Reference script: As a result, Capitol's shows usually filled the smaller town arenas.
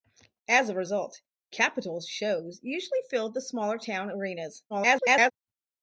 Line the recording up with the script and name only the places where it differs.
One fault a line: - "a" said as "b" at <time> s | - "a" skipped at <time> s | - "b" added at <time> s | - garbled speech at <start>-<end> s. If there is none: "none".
- garbled speech at 4.7-5.3 s